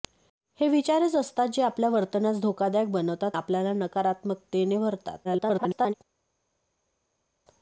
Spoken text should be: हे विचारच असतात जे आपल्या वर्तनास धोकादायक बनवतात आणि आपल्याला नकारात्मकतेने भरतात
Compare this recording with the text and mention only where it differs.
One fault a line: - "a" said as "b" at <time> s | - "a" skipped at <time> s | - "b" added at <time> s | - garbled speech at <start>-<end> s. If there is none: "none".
- "आणि" skipped at 3.4 s
- garbled speech at 5.2-5.9 s